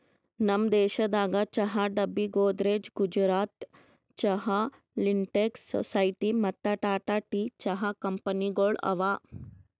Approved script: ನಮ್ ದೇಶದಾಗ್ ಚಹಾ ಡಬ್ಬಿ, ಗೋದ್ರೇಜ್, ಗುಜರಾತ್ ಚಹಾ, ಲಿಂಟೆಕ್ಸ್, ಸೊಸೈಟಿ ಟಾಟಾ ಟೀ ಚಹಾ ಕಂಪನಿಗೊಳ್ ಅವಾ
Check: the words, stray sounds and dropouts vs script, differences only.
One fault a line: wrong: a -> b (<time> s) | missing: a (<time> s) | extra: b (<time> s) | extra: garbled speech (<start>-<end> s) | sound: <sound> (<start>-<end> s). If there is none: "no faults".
extra: ಮತ್ತ (6.4 s)